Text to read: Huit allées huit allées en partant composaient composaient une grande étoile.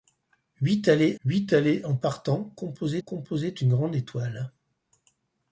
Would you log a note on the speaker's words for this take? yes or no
no